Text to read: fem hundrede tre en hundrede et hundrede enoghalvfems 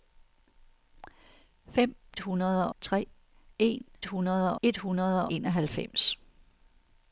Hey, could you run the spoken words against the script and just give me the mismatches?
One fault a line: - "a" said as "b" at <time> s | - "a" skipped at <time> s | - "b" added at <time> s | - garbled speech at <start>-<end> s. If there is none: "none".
none